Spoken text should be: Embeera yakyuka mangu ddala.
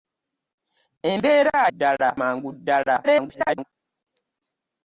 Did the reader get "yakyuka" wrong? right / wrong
wrong